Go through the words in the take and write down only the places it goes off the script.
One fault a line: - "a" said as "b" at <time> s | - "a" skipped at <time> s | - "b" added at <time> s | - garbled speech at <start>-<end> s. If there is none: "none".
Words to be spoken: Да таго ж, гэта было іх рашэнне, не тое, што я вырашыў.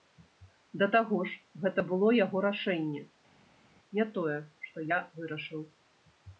- "іх" said as "яго" at 2.2 s